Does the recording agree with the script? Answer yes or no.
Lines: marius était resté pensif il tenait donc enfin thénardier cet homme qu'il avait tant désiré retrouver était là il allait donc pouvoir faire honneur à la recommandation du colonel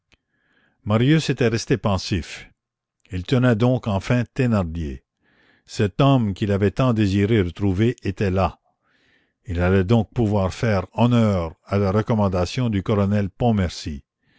yes